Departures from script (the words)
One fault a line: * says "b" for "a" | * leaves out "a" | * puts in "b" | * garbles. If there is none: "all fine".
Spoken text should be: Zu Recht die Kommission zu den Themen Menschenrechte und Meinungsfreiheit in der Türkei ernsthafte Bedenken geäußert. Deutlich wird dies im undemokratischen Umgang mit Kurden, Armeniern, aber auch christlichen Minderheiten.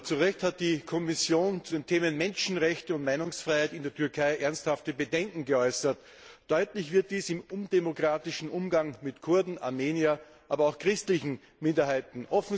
* puts in "hat"